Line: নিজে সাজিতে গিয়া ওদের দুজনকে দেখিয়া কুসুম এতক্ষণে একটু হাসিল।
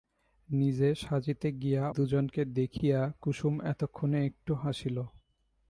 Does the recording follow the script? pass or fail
fail